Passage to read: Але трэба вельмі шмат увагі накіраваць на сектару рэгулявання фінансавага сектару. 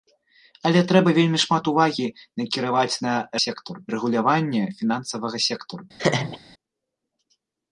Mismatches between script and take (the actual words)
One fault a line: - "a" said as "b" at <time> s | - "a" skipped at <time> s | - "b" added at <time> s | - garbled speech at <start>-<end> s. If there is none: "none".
none